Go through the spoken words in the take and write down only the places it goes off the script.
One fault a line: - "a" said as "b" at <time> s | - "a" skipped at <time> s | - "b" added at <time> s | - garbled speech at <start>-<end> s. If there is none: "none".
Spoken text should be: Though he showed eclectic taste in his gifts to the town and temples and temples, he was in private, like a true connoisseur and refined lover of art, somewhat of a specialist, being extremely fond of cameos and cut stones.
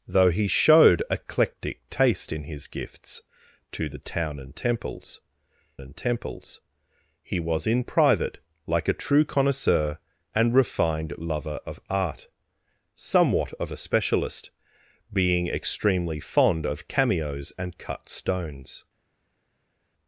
none